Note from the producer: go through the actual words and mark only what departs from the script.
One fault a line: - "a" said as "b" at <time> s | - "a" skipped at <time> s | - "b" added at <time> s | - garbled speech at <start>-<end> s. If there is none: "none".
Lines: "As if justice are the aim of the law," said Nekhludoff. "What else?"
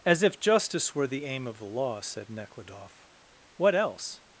- "are" said as "were" at 0.9 s